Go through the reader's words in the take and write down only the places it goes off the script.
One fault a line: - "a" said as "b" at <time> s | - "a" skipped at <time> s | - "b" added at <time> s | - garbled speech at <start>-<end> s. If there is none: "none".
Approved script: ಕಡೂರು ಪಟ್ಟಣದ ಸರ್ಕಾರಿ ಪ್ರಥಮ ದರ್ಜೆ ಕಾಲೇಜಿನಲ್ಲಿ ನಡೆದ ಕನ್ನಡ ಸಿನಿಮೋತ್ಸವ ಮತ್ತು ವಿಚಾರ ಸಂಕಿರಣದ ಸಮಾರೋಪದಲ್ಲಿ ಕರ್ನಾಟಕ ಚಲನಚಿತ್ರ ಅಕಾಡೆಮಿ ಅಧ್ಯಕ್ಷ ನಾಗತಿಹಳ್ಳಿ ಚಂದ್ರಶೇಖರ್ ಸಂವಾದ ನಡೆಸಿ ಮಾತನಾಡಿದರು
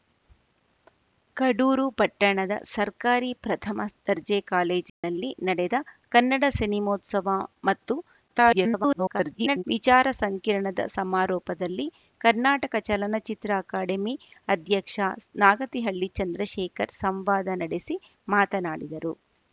- garbled speech at 8.3-9.6 s